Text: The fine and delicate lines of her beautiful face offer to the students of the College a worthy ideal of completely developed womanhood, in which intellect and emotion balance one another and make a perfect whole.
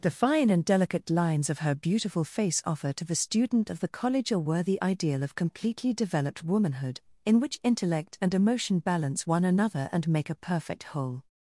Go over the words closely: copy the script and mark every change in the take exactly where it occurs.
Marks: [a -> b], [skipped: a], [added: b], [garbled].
The fine and delicate lines of her beautiful face offer to the [students -> student] of the College a worthy ideal of completely developed womanhood, in which intellect and emotion balance one another and make a perfect whole.